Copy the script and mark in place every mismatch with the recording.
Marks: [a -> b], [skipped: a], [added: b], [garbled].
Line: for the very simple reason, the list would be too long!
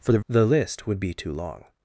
for the [skipped: very simple reason,] the list would be too long!